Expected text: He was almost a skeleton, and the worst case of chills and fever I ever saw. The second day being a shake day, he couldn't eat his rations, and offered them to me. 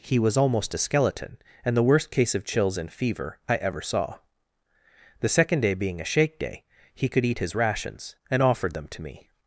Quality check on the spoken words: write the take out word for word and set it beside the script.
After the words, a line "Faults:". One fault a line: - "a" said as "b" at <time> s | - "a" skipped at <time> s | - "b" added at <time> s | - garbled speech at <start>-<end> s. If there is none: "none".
He was almost a skeleton, and the worst case of chills and fever I ever saw. The second day being a shake day, he could eat his rations, and offered them to me.
Faults:
- "couldn't" said as "could" at 7.1 s